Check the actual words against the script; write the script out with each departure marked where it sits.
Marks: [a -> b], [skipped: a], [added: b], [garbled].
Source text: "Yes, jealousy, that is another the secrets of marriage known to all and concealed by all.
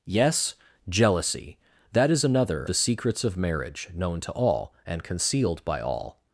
"Yes, jealousy, that is another the secrets of marriage known to all and concealed by all.